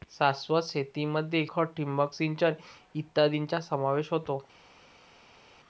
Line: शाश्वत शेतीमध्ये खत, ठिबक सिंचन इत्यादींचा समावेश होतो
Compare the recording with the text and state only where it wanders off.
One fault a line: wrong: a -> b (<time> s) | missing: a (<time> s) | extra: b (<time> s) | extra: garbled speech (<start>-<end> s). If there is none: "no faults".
no faults